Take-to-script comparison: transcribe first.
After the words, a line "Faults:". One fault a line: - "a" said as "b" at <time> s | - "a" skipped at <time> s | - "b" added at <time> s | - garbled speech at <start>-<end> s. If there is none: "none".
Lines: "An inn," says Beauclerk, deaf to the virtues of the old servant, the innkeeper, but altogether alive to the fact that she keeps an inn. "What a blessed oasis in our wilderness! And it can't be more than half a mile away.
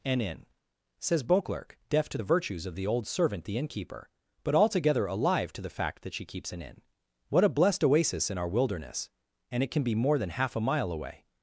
"An inn," says Beauclerk, deaf to the virtues of the old servant, the innkeeper, but altogether alive to the fact that she keeps an inn. "What a blessed oasis in our wilderness! And it can be more than half a mile away.
Faults:
- "can't" said as "can" at 9.7 s